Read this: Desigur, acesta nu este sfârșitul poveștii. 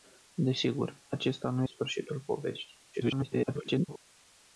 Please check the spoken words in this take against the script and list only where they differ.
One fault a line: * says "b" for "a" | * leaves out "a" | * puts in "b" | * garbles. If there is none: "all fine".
* leaves out "este"
* garbles